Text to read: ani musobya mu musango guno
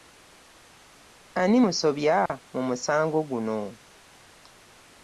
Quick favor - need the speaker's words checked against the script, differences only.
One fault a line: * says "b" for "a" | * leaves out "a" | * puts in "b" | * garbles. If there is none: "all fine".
all fine